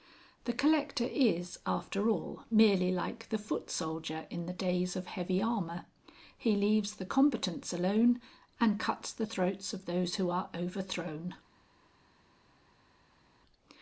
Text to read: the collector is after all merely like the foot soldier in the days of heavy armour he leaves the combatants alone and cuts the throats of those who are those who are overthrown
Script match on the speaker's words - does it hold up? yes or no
no